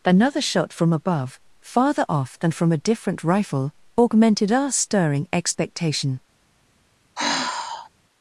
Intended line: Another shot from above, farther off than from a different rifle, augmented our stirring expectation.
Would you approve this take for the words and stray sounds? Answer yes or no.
no